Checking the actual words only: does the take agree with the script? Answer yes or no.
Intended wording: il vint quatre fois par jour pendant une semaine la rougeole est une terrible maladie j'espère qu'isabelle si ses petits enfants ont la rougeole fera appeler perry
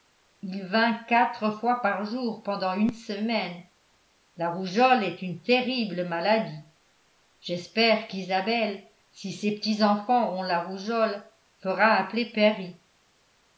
yes